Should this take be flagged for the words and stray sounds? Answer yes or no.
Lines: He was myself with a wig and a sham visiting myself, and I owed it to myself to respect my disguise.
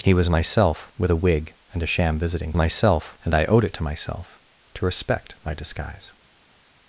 no